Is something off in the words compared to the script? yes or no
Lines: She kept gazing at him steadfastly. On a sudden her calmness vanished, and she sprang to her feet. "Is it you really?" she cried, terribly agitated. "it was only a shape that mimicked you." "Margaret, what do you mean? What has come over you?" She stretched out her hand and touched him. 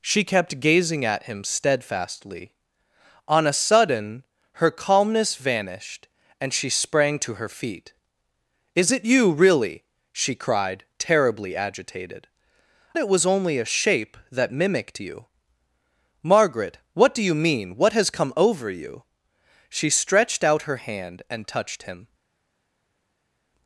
no